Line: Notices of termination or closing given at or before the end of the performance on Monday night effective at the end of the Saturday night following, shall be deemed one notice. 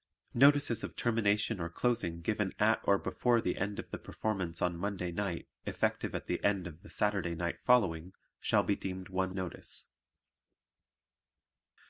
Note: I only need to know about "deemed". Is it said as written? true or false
true